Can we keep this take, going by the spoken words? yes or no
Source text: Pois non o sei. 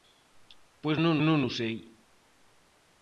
no